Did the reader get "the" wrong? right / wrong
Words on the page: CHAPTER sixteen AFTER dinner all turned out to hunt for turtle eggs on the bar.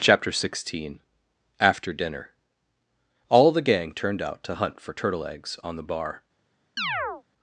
right